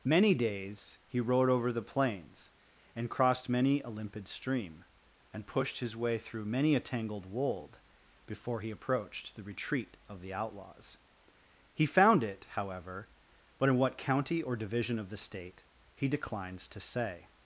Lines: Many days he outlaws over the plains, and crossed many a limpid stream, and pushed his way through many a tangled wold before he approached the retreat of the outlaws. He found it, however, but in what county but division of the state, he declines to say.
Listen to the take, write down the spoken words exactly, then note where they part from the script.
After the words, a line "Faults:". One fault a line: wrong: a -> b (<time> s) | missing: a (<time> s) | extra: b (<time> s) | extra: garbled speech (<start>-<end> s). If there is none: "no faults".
Many days he rode over the plains, and crossed many a limpid stream, and pushed his way through many a tangled wold before he approached the retreat of the outlaws. He found it, however, but in what county or division of the state, he declines to say.
Faults:
wrong: outlaws -> rode (1.2 s)
wrong: but -> or (14.4 s)